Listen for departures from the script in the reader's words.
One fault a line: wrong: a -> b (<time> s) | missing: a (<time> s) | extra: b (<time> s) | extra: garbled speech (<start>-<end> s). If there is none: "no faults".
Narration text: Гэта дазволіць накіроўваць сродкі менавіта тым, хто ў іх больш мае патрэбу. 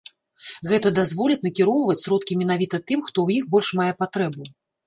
no faults